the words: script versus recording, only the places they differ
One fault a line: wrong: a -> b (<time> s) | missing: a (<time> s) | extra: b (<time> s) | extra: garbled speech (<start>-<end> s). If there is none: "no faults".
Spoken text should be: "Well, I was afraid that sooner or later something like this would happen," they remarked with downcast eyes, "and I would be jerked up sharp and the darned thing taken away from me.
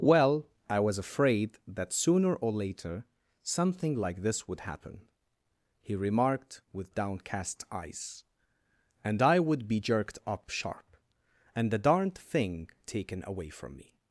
wrong: they -> he (5.8 s)